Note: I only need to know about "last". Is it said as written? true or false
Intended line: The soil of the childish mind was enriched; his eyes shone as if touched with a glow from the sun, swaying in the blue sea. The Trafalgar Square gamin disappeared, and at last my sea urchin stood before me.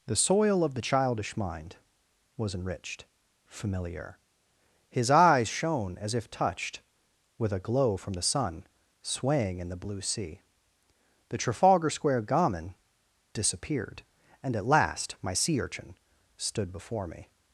true